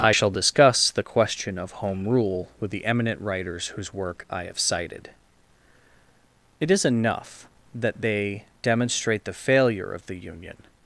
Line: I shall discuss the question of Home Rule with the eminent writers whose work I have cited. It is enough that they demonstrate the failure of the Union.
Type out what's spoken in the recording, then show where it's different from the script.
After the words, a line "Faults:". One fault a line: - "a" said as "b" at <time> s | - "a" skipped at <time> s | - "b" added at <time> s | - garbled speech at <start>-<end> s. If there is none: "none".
I shall discuss the question of Home Rule with the eminent writers whose work I have cited. It is enough that they demonstrate the failure of the Union.
Faults:
none